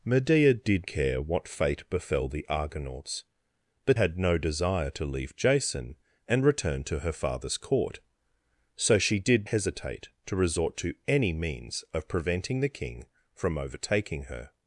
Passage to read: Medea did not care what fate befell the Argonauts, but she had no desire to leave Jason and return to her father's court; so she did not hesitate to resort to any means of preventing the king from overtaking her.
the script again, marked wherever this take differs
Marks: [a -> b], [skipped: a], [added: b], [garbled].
Medea did [skipped: not] care what fate befell the Argonauts, but [skipped: she] had no desire to leave Jason and return to her father's court; so she did [skipped: not] hesitate to resort to any means of preventing the king from overtaking her.